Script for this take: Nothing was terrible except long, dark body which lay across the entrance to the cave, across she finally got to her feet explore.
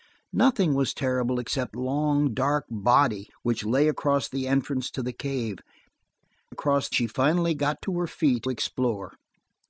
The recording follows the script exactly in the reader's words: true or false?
true